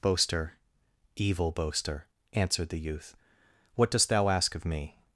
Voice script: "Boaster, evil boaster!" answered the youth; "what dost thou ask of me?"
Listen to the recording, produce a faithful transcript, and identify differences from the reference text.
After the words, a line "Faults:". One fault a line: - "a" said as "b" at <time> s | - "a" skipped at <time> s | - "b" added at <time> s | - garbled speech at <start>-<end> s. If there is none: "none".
"Boaster, evil boaster!" answered the youth; "what dost thou ask of me?"
Faults:
none